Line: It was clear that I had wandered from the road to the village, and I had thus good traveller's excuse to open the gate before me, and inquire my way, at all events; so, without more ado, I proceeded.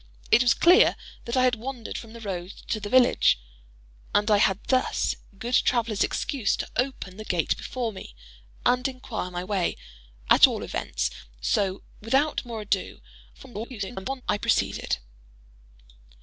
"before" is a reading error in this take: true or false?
false